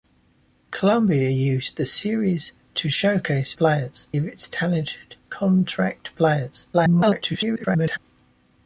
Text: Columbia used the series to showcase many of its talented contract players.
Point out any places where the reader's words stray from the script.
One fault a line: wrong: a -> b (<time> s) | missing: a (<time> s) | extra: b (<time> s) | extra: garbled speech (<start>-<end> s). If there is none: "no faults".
wrong: many -> players (3.6 s)
extra: garbled speech (6.7-8.0 s)